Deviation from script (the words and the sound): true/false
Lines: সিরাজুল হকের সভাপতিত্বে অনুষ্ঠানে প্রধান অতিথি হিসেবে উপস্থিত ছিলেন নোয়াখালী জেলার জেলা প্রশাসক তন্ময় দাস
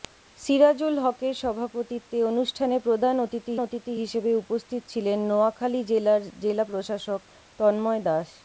true